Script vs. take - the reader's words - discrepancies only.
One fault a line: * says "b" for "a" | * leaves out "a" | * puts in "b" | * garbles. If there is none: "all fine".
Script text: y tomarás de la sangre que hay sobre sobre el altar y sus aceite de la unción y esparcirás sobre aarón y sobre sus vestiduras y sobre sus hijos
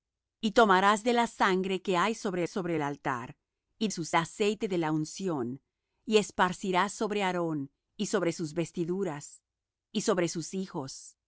all fine